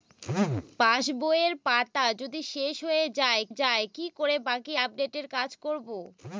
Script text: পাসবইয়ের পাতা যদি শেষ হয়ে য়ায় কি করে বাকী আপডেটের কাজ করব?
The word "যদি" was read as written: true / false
true